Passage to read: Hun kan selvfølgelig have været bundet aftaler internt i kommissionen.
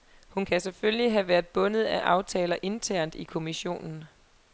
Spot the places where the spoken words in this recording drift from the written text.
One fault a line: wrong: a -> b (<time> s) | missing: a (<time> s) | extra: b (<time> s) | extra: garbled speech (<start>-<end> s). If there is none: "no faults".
extra: af (1.8 s)